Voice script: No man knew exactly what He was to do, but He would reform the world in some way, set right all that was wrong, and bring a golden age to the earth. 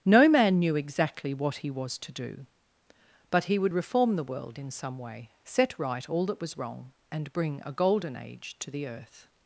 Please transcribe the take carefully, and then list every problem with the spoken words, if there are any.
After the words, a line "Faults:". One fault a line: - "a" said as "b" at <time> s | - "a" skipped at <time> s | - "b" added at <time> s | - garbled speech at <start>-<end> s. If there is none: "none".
No man knew exactly what He was to do, but He would reform the world in some way, set right all that was wrong, and bring a golden age to the earth.
Faults:
none